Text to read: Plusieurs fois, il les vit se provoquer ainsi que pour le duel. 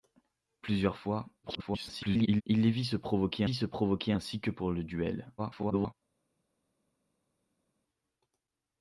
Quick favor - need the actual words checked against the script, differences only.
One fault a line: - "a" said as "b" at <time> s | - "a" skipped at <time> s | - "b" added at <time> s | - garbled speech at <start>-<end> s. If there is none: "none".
- garbled speech at 1.4-2.4 s
- "vit se provoquer" added at 3.4 s
- garbled speech at 5.4-5.9 s